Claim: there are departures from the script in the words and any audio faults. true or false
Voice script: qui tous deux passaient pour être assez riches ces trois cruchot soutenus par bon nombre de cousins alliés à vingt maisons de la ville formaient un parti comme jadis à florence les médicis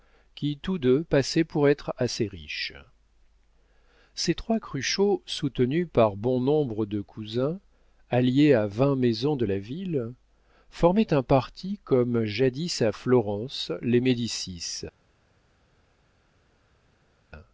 false